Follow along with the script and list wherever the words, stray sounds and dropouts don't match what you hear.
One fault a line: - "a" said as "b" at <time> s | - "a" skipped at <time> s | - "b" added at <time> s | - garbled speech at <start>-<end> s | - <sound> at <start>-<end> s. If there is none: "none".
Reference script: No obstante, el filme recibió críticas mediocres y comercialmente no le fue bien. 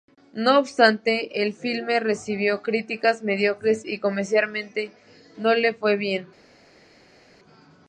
none